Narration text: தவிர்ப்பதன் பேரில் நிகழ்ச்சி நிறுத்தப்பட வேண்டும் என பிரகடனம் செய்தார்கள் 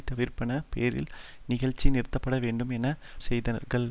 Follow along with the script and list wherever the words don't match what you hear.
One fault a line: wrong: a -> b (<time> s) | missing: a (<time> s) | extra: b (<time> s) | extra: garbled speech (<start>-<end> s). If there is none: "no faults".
missing: பிரகடனம் (2.9 s)